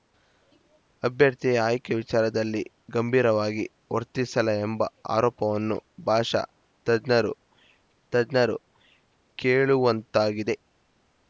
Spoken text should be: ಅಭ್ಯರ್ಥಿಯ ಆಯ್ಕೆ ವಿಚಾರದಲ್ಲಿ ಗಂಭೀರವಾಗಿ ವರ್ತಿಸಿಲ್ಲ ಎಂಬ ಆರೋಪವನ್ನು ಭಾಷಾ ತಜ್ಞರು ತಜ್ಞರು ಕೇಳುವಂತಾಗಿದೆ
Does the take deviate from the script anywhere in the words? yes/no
no